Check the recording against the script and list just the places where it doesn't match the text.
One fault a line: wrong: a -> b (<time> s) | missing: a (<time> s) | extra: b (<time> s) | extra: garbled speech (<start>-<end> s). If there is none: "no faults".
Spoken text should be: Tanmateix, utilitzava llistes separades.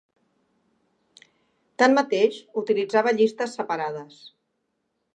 no faults